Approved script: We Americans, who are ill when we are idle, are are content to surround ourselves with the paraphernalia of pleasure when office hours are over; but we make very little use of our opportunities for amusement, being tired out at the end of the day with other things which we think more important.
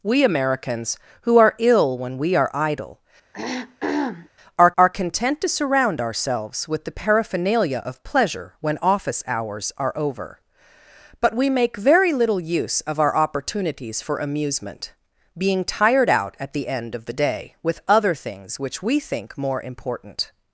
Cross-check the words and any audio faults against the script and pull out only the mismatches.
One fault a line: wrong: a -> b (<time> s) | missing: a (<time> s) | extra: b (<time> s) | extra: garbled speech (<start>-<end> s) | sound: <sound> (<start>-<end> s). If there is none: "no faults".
sound: throat clearing (3.3-4.3 s)